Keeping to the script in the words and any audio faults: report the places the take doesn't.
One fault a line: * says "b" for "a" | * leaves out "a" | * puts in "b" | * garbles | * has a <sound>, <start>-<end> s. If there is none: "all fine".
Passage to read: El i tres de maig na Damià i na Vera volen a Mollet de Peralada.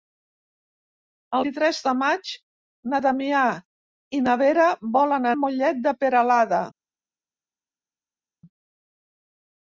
all fine